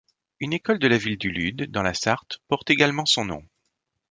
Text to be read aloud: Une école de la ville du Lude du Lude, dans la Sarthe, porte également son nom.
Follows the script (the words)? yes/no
no